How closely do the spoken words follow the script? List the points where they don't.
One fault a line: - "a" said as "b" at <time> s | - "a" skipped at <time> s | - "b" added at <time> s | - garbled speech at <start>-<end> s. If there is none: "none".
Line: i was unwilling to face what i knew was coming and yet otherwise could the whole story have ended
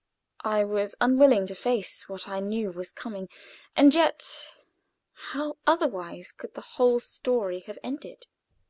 - "how" added at 5.3 s